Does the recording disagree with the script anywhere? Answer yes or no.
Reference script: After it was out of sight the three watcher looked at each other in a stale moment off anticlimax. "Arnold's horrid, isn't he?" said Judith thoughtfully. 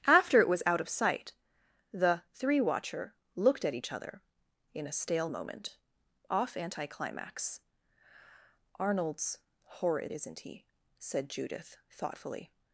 no